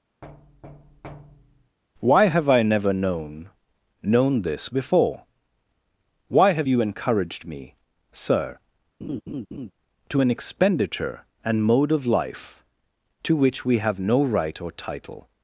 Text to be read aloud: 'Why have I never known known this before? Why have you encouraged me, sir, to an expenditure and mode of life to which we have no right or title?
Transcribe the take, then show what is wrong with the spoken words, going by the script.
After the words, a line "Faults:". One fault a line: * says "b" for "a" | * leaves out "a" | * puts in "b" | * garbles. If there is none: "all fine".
'Why have I never known known this before? Why have you encouraged me, sir, to an expenditure and mode of life to which we have no right or title?
Faults:
all fine